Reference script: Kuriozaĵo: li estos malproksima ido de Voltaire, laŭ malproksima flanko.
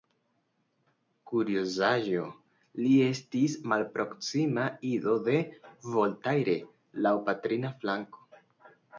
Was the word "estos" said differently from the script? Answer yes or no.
yes